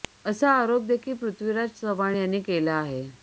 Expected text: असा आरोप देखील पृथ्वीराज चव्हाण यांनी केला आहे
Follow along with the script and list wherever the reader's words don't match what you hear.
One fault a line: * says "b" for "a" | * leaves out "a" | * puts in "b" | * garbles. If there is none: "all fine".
all fine